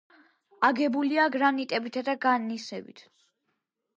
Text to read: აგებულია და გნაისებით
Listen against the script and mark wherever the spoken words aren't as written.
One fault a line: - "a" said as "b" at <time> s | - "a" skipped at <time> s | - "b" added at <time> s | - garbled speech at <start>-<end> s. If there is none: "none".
- "გრანიტებითა" added at 1.4 s